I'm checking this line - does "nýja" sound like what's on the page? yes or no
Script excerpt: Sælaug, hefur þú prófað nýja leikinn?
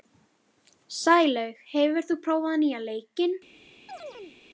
yes